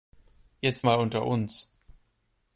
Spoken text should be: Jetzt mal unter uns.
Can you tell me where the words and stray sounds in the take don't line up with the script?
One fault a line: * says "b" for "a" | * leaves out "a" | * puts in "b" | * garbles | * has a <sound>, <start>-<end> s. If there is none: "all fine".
all fine